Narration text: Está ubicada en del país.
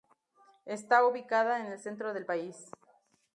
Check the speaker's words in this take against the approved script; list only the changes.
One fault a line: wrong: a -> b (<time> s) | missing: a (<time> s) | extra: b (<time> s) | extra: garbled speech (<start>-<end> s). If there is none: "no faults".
extra: el centro (1.7 s)